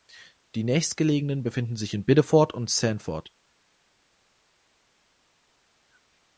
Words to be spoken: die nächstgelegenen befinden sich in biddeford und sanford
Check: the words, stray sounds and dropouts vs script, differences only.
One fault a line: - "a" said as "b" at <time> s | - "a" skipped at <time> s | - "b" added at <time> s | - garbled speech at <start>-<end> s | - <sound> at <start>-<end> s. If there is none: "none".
none